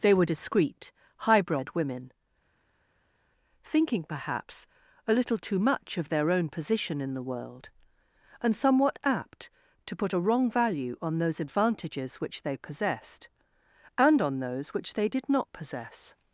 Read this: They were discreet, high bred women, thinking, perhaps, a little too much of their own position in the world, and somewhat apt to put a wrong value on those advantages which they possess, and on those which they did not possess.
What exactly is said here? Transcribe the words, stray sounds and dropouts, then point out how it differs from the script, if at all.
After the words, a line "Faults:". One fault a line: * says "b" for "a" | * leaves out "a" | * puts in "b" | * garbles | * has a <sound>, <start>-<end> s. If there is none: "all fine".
They were discreet, high bred women, thinking, perhaps, a little too much of their own position in the world, and somewhat apt to put a wrong value on those advantages which they possessed, and on those which they did not possess.
Faults:
* says "possessed" for "possess"